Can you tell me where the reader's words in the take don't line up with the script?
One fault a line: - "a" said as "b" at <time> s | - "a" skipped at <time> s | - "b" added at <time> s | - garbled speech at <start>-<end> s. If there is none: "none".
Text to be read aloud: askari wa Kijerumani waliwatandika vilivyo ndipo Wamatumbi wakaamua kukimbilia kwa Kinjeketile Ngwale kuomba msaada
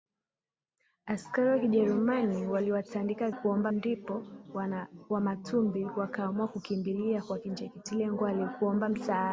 - "vilivyo" said as "kuomba" at 3.3 s